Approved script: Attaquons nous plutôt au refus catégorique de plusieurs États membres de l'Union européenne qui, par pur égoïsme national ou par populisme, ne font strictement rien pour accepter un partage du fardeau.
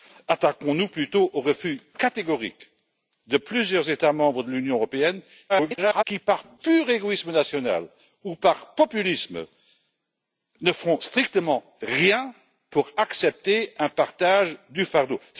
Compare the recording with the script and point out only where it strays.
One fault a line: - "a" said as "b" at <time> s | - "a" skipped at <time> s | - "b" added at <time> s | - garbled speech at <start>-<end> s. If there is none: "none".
- garbled speech at 5.5-6.0 s